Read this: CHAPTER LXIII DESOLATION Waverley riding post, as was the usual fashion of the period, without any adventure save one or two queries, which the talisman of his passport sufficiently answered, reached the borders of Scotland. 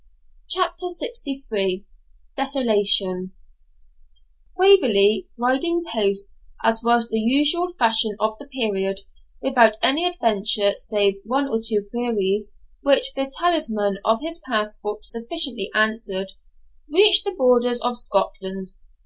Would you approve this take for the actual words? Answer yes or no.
yes